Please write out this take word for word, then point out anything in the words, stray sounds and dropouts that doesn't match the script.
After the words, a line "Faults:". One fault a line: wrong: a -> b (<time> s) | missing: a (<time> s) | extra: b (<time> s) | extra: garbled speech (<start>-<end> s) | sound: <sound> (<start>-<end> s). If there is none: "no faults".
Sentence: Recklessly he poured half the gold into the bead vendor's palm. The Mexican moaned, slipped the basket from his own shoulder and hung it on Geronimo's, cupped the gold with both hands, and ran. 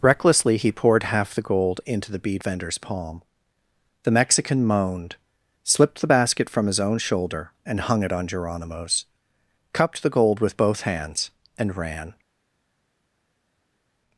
Recklessly he poured half the gold into the bead vendor's palm. The Mexican moaned, slipped the basket from his own shoulder and hung it on Geronimo's, cupped the gold with both hands, and ran.
Faults:
no faults